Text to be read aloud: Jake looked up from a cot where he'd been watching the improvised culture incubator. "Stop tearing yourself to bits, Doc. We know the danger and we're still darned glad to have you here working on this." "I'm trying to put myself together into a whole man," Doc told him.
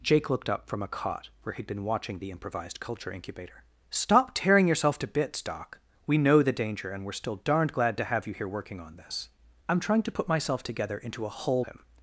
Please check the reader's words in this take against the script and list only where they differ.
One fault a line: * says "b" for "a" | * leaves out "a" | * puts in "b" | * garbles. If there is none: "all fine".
* leaves out "man Doc told"